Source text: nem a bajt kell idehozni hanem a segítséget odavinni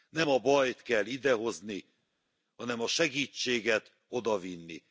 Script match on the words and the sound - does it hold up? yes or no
yes